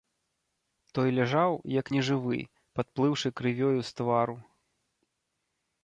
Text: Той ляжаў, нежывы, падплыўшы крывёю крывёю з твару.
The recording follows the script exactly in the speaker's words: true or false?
false